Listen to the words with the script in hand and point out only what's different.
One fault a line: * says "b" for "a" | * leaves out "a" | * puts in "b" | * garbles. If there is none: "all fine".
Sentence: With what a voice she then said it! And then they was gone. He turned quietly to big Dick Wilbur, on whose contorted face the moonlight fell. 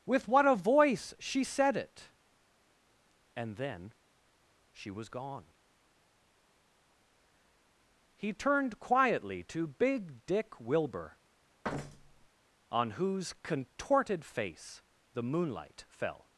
* leaves out "then"
* says "she" for "they"